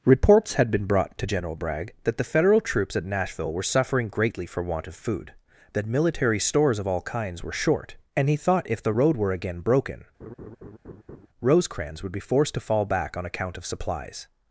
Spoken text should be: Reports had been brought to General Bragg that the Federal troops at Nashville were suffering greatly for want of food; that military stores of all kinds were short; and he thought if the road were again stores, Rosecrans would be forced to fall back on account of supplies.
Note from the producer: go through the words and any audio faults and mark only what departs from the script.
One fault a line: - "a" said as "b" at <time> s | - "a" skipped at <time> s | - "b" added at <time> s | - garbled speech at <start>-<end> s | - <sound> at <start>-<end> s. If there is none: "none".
- "stores" said as "broken" at 9.6 s
- laugh at 10.2-11.3 s